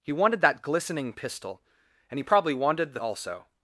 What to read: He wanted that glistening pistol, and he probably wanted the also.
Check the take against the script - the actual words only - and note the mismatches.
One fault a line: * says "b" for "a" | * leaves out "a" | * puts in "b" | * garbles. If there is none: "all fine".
all fine